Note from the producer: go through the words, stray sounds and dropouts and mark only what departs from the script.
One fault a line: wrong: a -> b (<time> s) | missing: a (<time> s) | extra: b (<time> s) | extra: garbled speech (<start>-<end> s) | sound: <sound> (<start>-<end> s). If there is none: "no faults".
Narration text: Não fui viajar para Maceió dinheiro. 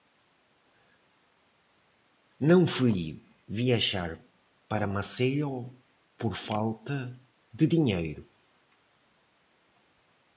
extra: por falta de (6.2 s)